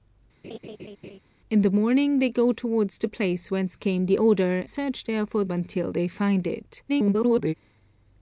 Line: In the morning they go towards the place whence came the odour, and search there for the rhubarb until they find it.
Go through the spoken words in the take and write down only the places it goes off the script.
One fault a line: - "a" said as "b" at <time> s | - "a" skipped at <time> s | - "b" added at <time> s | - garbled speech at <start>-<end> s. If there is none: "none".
- "and" skipped at 4.6 s
- "the rhubarb" skipped at 5.4 s
- garbled speech at 6.9-7.5 s